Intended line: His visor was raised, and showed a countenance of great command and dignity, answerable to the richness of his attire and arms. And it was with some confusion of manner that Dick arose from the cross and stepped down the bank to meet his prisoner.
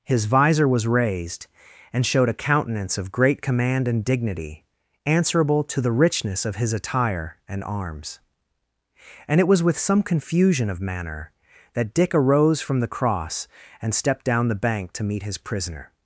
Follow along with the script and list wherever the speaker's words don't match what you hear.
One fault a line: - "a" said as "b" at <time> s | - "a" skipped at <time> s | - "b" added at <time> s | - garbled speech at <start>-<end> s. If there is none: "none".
none